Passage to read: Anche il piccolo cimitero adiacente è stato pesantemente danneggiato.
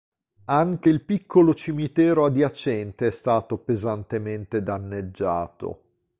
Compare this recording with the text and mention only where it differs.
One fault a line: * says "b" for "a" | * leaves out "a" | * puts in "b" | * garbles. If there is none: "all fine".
all fine